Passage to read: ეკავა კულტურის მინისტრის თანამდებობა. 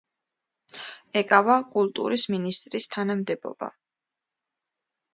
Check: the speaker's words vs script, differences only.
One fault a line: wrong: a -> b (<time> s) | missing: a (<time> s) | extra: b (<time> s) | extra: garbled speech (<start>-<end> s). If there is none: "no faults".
no faults